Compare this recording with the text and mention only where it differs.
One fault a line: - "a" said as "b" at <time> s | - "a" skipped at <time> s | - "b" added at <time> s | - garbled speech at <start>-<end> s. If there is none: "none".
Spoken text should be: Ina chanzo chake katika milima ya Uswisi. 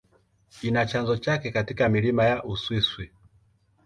none